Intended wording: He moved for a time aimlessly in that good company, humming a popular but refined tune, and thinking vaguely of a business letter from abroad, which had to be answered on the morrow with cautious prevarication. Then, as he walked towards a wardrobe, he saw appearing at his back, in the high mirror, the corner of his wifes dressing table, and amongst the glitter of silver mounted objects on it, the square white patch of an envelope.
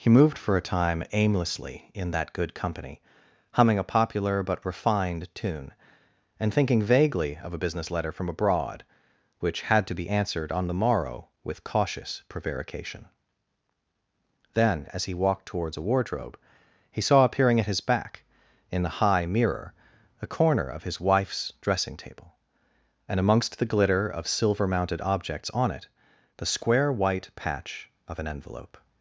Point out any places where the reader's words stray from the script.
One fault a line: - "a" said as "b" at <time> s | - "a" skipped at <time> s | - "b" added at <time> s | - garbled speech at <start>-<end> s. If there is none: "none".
- "the" said as "a" at 20.2 s